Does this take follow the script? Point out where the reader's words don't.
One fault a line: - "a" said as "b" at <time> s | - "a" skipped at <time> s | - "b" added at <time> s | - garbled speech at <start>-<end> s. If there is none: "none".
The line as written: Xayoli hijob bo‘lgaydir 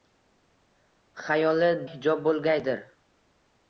none